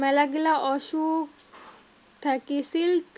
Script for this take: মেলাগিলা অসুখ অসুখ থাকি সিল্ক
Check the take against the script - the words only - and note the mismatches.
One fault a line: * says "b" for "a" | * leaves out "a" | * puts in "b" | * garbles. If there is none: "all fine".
* leaves out "অসুখ"